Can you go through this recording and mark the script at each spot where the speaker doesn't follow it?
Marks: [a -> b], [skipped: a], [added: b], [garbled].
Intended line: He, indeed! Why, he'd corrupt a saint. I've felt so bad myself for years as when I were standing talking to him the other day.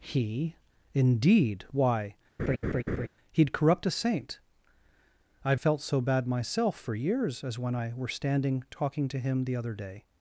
He, indeed! Why, he'd corrupt a saint. I've felt so bad myself for years as when I were standing talking to him the other day.